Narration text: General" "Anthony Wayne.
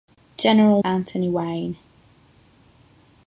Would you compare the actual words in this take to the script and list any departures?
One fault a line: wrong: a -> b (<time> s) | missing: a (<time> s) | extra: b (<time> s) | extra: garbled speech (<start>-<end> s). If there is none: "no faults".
no faults